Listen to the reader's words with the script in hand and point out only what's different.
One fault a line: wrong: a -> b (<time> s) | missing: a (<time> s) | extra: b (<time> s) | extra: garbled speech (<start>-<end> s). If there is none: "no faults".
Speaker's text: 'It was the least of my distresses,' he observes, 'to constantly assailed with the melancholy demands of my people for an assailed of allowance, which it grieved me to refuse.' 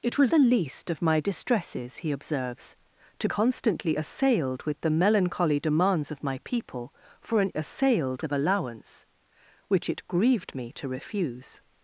no faults